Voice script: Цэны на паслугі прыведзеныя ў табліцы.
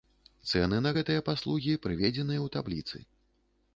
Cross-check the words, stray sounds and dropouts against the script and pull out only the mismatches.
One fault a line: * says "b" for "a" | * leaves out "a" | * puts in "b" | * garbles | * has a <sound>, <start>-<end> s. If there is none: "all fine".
* puts in "гэтыя"